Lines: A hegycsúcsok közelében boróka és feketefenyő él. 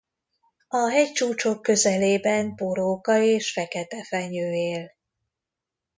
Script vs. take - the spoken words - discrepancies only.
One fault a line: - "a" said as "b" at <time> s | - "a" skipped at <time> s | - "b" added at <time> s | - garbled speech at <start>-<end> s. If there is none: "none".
none